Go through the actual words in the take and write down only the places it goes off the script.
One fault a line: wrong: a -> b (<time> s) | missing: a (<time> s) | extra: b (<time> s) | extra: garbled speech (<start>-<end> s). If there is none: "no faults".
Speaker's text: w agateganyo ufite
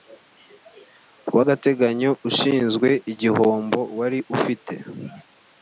extra: ushinzwe igihombo wari (2.3 s)